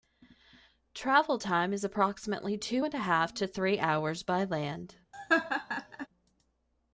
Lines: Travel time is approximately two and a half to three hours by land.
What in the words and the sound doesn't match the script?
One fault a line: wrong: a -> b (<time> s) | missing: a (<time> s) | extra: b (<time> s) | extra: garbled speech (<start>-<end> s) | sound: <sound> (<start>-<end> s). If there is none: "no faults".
sound: laugh (5.1-6.1 s)